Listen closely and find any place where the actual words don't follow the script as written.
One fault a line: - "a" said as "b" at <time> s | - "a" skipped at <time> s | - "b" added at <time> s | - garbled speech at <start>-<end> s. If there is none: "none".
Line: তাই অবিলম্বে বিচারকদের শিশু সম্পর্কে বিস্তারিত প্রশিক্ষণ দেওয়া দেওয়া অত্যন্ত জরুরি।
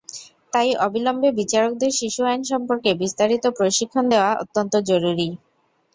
- "আইন" added at 2.2 s
- "দেওয়া" skipped at 4.3 s